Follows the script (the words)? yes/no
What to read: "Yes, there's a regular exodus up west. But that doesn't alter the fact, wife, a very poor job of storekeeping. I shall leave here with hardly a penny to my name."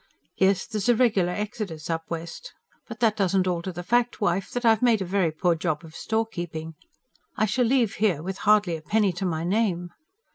no